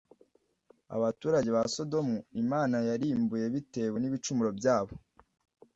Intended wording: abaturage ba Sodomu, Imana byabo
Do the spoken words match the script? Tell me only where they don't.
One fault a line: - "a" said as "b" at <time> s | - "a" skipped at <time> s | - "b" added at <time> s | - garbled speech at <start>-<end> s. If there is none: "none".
- "yarimbuye bitewe n'ibicumuro" added at 2.9 s